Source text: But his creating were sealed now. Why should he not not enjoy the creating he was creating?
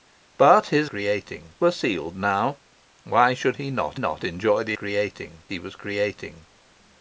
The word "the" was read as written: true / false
true